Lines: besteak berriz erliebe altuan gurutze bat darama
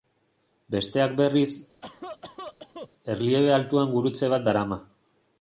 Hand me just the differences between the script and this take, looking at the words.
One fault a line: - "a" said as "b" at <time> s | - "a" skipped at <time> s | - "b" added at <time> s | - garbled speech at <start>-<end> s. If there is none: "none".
none